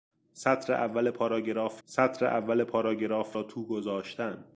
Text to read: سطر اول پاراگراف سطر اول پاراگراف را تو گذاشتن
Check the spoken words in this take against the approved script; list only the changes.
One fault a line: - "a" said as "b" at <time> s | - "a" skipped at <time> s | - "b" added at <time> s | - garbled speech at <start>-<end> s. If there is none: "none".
none